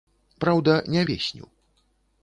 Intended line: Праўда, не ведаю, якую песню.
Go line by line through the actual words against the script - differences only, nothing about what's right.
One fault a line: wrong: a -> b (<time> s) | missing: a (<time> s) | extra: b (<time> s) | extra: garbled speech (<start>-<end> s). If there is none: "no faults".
missing: ведаю якую (1.0 s)